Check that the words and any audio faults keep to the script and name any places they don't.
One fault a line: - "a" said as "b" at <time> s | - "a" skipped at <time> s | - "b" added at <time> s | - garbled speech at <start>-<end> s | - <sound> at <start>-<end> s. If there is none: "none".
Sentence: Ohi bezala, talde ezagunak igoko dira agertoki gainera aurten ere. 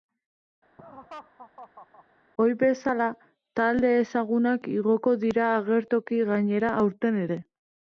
- laugh at 0.8-2.0 s